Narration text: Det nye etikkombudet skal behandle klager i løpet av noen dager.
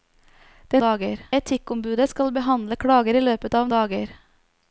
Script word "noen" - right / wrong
wrong